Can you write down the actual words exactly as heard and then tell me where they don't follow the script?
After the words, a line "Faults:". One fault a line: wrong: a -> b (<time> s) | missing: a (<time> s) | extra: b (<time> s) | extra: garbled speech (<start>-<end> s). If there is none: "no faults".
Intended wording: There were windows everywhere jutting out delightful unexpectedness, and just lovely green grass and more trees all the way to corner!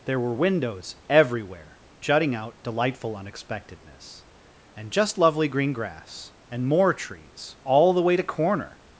There were windows everywhere jutting out delightful unexpectedness, and just lovely green grass and more trees all the way to corner!
Faults:
no faults